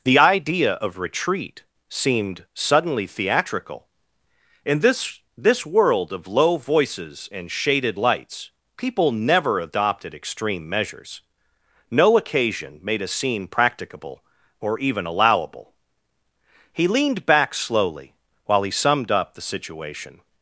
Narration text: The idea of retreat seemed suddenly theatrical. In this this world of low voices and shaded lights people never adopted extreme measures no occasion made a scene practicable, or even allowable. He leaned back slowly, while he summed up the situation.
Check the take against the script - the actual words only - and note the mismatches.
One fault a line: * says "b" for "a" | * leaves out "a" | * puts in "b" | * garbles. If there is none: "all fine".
all fine